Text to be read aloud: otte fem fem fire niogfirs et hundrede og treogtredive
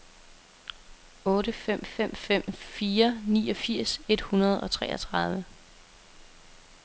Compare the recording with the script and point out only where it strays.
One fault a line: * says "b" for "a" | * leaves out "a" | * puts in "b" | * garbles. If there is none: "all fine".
* puts in "fem"